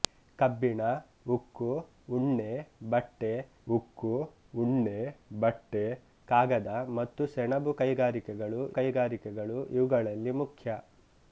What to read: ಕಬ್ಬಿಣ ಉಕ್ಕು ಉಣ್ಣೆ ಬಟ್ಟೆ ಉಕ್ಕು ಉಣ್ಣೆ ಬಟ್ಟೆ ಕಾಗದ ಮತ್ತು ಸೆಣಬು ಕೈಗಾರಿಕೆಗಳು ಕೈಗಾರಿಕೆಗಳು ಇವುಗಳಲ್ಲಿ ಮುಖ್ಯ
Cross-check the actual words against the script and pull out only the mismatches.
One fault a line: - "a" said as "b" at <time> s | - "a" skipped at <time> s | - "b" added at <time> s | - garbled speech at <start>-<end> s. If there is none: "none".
none